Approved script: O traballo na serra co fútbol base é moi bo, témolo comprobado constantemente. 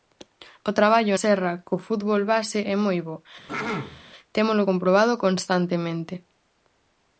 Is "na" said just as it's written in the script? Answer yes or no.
no